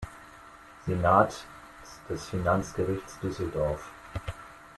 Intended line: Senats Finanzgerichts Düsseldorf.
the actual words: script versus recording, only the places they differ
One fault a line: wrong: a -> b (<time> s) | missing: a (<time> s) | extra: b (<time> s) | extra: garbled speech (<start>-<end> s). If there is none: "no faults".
extra: des (2.1 s)